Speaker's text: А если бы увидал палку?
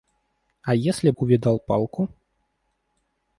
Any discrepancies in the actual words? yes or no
yes